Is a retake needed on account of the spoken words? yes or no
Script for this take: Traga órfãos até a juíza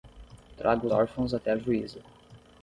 no